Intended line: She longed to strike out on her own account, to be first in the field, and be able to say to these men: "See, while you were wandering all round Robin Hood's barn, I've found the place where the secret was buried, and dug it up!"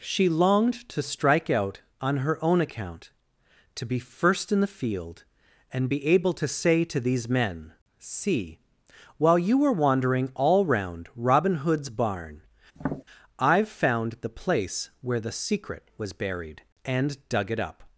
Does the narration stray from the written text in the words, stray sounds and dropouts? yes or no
yes